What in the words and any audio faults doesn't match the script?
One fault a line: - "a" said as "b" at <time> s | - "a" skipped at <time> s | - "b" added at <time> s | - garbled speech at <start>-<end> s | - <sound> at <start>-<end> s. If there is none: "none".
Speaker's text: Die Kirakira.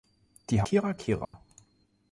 - dropout at 1.3-1.3 s